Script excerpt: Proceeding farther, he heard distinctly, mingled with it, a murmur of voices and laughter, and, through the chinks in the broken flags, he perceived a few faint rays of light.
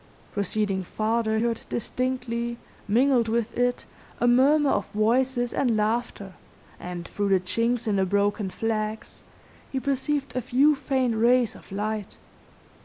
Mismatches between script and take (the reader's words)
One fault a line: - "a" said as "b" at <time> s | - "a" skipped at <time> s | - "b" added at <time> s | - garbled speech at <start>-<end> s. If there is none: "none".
- "he" skipped at 1.4 s